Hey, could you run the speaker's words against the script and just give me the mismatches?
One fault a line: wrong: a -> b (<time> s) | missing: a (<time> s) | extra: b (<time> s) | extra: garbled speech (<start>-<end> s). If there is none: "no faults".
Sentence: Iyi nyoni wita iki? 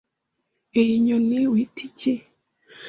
no faults